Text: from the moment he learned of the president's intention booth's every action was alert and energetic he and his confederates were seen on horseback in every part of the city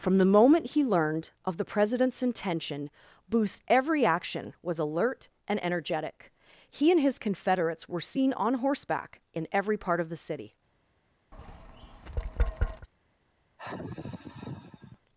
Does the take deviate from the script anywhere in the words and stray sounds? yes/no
yes